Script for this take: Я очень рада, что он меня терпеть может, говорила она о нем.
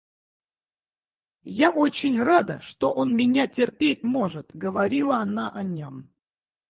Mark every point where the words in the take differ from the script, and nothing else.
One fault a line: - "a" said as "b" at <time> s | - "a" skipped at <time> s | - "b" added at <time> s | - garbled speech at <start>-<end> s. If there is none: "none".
none